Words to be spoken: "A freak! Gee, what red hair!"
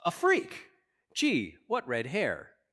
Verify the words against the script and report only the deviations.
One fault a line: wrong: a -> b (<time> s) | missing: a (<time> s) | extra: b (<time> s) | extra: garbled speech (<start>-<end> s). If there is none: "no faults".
no faults